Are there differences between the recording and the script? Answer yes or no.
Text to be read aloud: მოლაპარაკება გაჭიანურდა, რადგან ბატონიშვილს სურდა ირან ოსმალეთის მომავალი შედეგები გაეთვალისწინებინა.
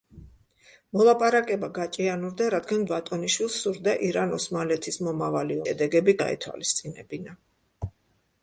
no